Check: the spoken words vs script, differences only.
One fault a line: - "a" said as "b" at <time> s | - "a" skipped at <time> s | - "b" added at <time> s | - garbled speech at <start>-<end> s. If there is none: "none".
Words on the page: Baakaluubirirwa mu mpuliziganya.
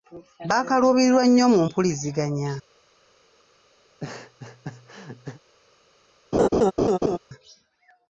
- "nnyo" added at 1.3 s